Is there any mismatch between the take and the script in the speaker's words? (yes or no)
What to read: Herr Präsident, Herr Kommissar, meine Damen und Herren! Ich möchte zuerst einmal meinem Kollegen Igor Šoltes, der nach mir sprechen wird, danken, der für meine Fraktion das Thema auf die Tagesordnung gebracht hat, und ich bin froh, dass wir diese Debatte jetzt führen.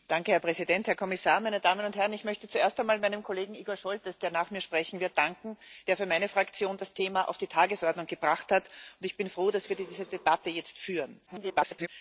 yes